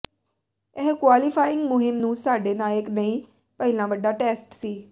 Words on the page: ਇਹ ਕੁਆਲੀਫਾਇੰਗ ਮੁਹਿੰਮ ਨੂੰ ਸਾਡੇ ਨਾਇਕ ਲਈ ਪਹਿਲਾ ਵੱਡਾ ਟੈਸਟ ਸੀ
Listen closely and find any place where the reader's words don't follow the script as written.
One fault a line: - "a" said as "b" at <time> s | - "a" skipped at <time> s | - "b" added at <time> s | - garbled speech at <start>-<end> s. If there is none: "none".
none